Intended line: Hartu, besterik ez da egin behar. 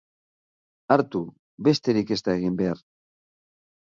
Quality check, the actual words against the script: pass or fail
pass